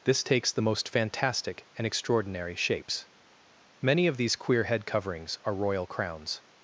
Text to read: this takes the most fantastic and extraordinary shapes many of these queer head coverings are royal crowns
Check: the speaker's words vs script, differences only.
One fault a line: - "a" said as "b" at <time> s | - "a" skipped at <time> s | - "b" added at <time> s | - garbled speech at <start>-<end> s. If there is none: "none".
none